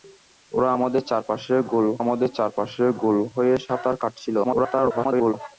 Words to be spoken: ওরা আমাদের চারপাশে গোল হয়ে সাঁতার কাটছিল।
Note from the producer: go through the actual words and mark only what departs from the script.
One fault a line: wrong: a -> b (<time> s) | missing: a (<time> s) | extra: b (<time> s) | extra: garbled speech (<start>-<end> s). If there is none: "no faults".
extra: আমাদের চারপাশে গোল (2.0 s)
extra: garbled speech (4.4-5.3 s)